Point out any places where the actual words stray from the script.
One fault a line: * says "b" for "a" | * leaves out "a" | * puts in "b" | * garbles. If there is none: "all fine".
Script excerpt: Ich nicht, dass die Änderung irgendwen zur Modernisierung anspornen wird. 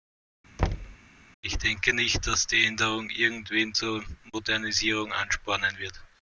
* puts in "denke"